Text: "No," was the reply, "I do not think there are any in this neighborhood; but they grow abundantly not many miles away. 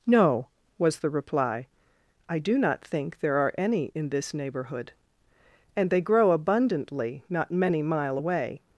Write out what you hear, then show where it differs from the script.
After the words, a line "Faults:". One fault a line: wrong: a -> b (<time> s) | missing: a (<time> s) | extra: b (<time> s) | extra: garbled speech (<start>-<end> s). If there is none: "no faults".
"No," was the reply, "I do not think there are any in this neighborhood; and they grow abundantly not many mile away.
Faults:
wrong: but -> and (5.8 s)
wrong: miles -> mile (7.8 s)